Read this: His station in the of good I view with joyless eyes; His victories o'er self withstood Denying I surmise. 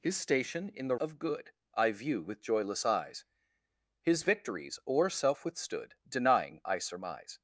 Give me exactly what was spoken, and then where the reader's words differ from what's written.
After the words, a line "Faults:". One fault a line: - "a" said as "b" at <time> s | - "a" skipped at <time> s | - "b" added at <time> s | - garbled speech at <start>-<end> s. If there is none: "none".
His station in the of good I view with joyless eyes; His victories o'er self withstood Denying I surmise.
Faults:
none